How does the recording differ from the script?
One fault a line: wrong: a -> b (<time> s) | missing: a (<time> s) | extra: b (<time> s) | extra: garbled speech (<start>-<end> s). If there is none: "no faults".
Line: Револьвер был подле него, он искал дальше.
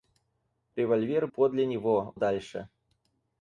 missing: был (1.3 s)
missing: он искал (2.1 s)